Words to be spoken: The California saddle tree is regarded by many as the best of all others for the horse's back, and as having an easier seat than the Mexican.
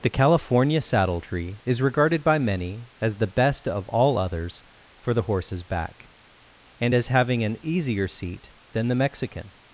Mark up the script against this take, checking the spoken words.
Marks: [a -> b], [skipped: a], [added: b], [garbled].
The California saddle tree is regarded by many as the best of all others for the horse's back, and as having an easier seat than the Mexican.